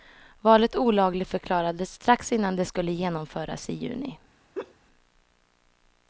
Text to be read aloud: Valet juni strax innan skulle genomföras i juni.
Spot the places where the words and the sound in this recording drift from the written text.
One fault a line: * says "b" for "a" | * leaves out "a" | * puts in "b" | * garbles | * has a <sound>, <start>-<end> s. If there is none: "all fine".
* says "olagligförklarades" for "juni"
* puts in "det"
* has a laugh, 4.5-4.7 s